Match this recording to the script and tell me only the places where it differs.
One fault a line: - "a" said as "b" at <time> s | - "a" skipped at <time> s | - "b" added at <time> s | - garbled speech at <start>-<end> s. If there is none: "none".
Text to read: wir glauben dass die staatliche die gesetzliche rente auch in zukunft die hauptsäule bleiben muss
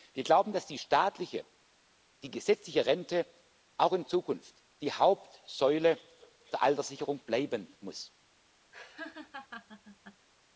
- "der alterssicherung" added at 6.5 s